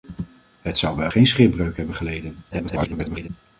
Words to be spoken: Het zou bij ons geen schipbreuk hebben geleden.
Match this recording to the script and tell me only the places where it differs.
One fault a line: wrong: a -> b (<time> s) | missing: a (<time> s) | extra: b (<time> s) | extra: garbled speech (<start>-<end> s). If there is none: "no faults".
missing: ons (1.1 s)
extra: garbled speech (2.5-3.3 s)